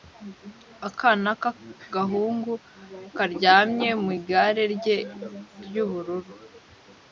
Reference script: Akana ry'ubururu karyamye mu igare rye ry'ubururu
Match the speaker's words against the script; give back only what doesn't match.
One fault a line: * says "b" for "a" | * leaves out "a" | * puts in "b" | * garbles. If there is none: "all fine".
* says "k'agahungu" for "ry'ubururu"